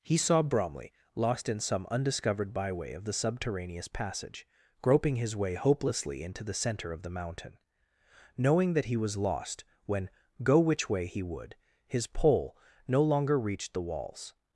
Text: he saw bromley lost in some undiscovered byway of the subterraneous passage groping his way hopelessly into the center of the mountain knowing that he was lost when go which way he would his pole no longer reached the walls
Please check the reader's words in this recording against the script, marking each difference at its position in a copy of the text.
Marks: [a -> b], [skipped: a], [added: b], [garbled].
he saw bromley lost in some undiscovered byway of the subterraneous passage groping his way hopelessly into the center of the mountain knowing that he was lost when go which way he would his pole no longer reached the walls